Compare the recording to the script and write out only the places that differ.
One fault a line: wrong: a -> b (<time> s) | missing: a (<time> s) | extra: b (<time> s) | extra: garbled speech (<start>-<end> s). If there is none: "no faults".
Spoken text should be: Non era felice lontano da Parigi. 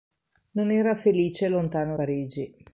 missing: da (1.9 s)